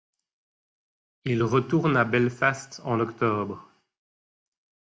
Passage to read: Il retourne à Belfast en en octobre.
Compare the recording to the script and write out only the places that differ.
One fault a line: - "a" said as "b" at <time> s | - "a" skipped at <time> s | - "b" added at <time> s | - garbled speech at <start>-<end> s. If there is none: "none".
- "en" skipped at 3.0 s